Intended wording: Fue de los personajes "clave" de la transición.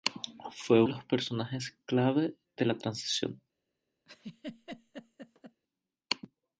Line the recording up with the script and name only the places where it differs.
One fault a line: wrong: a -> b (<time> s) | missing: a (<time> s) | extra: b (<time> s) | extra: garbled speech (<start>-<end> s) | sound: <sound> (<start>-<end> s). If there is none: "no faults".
sound: laugh (4.1-5.6 s)